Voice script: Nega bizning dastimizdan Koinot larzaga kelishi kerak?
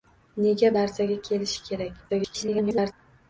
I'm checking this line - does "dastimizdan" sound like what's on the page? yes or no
no